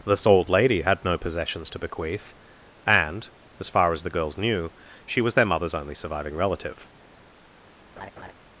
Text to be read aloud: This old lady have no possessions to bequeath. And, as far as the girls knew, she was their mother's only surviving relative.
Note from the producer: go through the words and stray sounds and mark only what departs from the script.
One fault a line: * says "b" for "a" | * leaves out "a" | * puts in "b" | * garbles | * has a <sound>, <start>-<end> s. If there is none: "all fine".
* says "had" for "have"
* has a laugh, 8.0-8.3 s